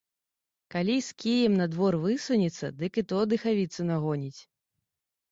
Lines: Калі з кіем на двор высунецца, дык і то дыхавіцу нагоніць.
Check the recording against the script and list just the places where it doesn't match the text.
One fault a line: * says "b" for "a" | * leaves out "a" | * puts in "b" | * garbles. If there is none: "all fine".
all fine